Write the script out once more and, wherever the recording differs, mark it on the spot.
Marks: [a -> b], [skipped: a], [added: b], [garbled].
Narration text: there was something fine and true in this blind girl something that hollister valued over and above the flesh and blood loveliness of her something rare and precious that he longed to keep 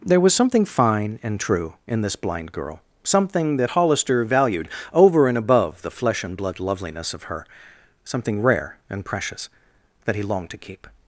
there was something fine and true in this blind girl something that hollister valued over and above the flesh and blood loveliness of her something rare and precious that he longed to keep